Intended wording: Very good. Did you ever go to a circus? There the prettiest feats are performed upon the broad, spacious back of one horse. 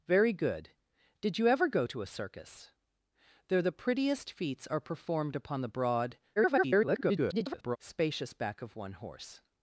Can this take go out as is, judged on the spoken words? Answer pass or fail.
fail